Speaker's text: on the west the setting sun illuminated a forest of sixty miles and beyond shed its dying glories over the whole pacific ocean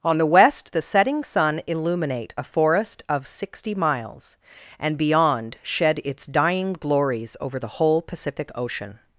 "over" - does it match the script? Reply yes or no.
yes